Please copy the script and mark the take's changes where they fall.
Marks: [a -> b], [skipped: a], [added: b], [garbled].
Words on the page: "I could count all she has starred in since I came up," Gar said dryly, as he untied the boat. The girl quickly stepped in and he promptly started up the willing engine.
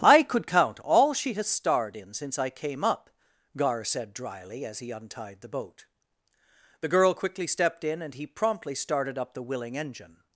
"I could count all she has starred in since I came up," Gar said dryly, as he untied the boat. The girl quickly stepped in and he promptly started up the willing engine.